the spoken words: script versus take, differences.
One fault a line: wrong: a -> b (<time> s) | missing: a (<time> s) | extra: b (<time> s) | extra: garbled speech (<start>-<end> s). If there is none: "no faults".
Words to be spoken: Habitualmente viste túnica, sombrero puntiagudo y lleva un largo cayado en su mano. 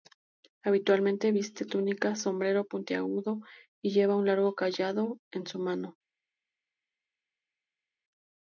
no faults